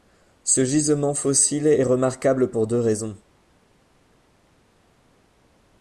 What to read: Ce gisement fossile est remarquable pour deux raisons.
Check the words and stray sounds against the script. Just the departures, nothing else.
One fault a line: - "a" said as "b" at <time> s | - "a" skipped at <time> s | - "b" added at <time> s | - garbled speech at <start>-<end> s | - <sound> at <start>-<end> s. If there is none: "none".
none